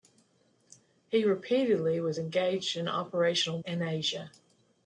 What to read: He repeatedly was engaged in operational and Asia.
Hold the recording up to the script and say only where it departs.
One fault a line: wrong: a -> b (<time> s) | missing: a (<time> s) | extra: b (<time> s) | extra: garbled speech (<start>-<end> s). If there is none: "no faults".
no faults